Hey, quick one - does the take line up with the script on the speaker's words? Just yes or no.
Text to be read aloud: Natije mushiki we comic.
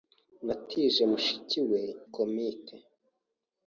yes